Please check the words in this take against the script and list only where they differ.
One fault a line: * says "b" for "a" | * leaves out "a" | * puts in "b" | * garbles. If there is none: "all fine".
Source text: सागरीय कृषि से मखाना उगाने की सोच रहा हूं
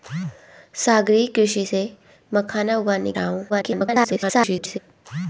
* leaves out "की सोच"
* garbles